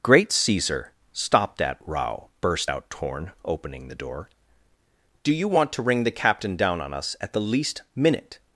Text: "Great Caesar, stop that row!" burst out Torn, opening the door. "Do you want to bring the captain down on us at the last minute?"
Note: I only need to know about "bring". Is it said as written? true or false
false